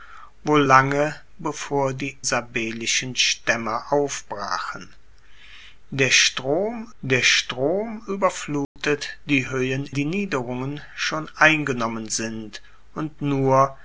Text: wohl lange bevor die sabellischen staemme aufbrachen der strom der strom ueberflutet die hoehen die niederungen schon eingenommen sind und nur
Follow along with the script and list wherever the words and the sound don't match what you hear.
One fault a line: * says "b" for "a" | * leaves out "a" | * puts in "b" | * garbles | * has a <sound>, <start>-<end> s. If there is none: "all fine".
* has a dropout, 8.6-8.8 s